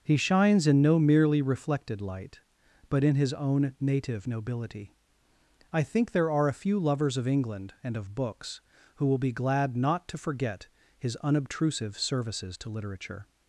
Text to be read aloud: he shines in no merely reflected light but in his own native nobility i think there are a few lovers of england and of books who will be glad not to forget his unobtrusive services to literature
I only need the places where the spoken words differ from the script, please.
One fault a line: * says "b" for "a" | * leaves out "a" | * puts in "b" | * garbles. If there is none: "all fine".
all fine